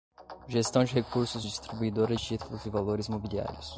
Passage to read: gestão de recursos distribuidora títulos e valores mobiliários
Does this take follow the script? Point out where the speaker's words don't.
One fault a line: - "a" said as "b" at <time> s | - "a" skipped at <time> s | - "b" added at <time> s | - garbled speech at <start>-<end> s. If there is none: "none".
none